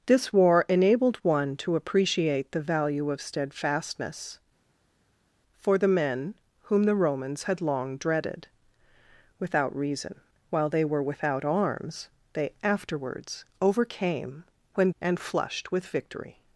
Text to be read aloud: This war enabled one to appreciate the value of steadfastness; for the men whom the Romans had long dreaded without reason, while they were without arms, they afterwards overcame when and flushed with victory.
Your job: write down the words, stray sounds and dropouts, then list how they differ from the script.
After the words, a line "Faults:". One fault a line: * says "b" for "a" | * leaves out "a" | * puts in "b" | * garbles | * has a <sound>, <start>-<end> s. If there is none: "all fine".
This war enabled one to appreciate the value of steadfastness; for the men whom the Romans had long dreaded without reason, while they were without arms, they afterwards overcame when and flushed with victory.
Faults:
all fine